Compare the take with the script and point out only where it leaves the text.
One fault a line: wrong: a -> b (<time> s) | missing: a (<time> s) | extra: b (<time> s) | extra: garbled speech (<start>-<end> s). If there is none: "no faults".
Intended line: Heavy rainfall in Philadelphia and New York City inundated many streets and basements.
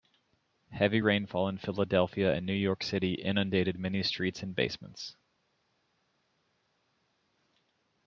no faults